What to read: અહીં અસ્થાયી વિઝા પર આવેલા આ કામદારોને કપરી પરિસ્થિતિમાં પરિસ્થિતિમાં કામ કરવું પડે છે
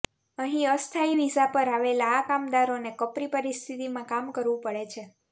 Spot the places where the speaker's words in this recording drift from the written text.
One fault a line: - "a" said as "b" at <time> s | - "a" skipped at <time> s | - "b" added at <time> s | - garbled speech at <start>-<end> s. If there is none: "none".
- "પરિસ્થિતિમાં" skipped at 4.1 s